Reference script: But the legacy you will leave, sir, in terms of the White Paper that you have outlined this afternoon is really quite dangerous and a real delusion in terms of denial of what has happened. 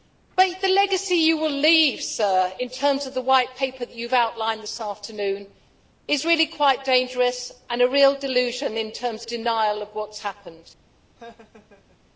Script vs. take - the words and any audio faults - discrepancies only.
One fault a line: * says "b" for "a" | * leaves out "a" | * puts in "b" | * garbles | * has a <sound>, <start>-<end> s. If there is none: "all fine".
* leaves out "of"
* has a laugh, 11.2-12.0 s